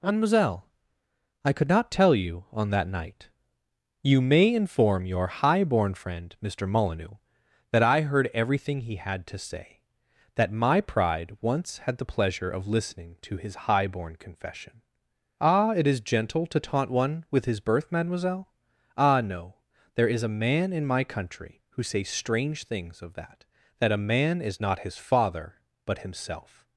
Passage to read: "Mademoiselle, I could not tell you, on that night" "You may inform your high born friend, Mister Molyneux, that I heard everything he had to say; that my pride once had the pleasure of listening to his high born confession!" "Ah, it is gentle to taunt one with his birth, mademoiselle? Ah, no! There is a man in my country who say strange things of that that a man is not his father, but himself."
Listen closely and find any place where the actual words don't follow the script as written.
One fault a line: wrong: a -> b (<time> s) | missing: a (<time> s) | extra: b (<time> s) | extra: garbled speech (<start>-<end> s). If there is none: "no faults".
no faults